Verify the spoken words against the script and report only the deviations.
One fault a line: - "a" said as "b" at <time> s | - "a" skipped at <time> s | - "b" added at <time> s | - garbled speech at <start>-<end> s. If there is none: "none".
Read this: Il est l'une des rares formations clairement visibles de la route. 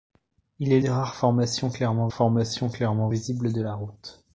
- "l'une" skipped at 0.8 s
- "formations clairement" added at 2.1 s